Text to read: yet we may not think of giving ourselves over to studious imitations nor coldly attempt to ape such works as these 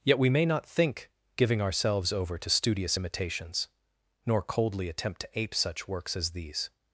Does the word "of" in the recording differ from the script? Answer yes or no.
yes